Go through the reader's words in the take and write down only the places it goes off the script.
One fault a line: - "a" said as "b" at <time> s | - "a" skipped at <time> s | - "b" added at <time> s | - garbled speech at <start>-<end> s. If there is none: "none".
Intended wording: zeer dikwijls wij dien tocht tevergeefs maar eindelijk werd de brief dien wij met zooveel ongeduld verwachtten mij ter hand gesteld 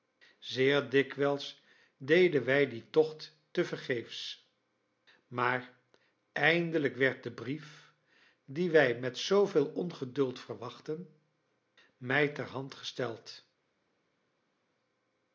- "deden" added at 2.0 s